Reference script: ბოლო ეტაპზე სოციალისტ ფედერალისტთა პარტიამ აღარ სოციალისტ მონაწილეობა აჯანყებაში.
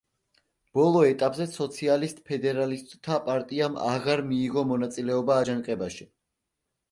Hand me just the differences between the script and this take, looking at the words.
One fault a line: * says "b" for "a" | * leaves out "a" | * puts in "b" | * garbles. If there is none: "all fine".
* says "მიიღო" for "სოციალისტ"